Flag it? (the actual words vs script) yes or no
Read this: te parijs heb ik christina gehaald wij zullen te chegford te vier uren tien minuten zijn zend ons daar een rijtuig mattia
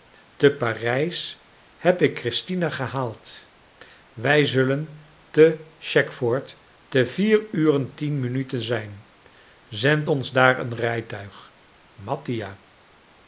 no